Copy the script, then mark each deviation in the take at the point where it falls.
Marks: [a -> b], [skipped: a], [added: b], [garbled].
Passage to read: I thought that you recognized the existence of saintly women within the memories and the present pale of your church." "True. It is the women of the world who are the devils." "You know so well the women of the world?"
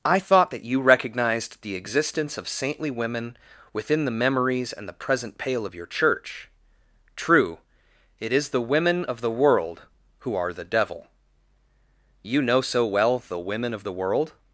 I thought that you recognized the existence of saintly women within the memories and the present pale of your church." "True. It is the women of the world who are the [devils." -> devil] "You know so well the women of the world?"